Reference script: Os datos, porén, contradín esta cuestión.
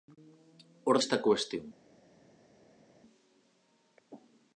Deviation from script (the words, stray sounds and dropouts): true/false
true